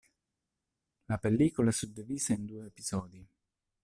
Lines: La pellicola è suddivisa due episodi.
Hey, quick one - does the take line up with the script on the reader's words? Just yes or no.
no